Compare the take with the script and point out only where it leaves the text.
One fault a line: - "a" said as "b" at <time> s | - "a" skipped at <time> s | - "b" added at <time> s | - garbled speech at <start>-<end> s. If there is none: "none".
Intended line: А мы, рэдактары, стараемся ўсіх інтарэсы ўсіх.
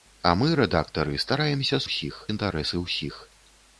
none